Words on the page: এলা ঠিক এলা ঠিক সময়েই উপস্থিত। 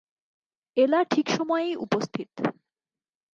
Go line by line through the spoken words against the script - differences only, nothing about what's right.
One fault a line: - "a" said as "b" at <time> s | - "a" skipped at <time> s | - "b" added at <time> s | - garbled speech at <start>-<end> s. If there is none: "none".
- "এলা ঠিক" skipped at 1.3 s